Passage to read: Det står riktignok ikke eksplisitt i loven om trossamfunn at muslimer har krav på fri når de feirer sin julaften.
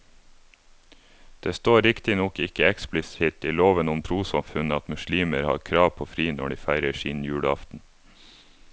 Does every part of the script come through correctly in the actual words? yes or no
yes